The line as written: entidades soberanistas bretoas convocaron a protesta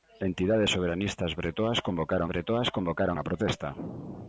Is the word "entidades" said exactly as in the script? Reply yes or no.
yes